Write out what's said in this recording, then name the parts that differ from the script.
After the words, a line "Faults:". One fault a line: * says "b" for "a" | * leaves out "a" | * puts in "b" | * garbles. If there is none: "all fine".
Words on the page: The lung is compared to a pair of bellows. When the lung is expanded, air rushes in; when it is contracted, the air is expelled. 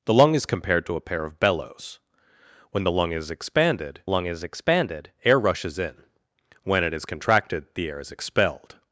The lung is compared to a pair of bellows. When the lung is expanded lung is expanded, air rushes in; when it is contracted, the air is expelled.
Faults:
* puts in "lung is expanded"